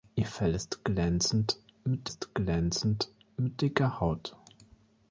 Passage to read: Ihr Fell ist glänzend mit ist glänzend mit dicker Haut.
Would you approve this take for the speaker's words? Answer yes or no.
yes